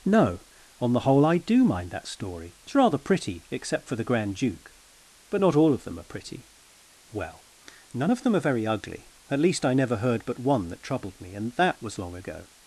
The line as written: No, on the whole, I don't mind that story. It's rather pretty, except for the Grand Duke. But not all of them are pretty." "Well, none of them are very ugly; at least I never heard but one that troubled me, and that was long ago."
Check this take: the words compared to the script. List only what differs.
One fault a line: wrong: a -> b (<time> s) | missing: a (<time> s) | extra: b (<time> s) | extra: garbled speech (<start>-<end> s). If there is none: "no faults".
wrong: don't -> do (1.4 s)